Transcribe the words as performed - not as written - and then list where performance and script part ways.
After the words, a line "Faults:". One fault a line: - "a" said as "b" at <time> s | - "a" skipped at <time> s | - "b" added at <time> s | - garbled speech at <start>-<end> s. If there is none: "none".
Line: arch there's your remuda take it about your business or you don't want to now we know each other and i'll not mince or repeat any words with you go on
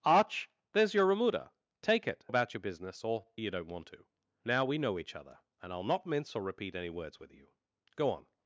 arch there's your remuda take it about your business or you don't want to now we know each other and i'll not mince or repeat any words with you go on
Faults:
none